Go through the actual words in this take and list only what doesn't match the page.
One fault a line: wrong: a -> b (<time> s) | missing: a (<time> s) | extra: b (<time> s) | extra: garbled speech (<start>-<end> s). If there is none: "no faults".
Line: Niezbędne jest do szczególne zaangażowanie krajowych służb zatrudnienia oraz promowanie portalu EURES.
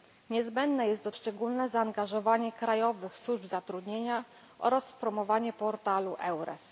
no faults